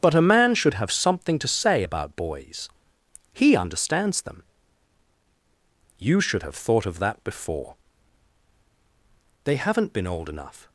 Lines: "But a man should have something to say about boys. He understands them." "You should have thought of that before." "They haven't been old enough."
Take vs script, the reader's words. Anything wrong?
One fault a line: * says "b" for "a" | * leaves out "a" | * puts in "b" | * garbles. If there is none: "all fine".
all fine